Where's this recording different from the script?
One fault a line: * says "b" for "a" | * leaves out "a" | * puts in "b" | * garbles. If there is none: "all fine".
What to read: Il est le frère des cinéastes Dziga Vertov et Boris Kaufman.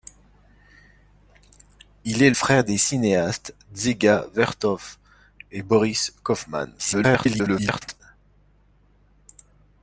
* leaves out "le"
* garbles